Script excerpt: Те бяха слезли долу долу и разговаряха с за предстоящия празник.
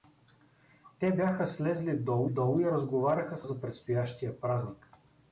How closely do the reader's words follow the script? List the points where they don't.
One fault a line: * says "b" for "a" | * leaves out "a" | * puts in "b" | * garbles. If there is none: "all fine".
all fine